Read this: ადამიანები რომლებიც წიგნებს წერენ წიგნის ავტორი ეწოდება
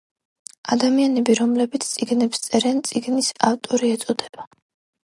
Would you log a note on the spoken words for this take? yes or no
no